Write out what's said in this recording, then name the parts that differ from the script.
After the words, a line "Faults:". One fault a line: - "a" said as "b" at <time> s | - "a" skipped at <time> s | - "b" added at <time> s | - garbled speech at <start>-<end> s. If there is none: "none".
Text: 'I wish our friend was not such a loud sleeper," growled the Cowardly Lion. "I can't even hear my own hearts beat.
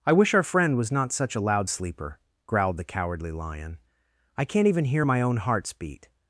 'I wish our friend was not such a loud sleeper," growled the Cowardly Lion. "I can't even hear my own hearts beat.
Faults:
none